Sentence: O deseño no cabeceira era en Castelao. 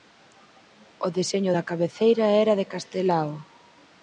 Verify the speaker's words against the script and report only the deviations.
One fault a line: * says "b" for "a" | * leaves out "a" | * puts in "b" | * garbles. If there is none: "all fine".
* says "da" for "no"
* says "de" for "en"